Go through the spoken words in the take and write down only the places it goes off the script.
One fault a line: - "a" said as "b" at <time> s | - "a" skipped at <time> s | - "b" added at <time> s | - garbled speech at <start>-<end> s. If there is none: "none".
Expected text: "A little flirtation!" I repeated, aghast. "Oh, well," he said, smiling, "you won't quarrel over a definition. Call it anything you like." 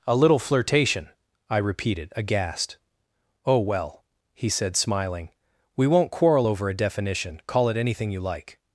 - "you" said as "we" at 5.8 s